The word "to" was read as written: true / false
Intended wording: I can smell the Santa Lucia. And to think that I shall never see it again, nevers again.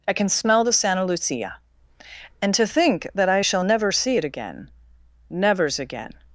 true